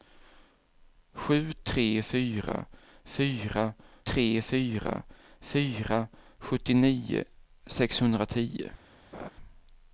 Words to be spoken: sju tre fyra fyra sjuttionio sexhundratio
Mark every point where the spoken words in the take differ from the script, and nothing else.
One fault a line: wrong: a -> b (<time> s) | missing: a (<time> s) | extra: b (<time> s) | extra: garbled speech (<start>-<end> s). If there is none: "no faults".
extra: tre fyra fyra (4.1 s)